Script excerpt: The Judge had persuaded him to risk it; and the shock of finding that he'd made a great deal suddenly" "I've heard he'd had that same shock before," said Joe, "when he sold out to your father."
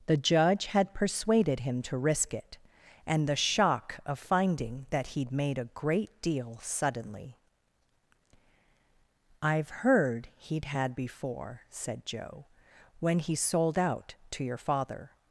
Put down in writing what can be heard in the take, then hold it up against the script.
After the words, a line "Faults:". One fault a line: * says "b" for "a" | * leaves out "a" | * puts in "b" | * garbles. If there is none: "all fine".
The Judge had persuaded him to risk it; and the shock of finding that he'd made a great deal suddenly" "I've heard he'd had before," said Joe, "when he sold out to your father."
Faults:
* leaves out "that same shock"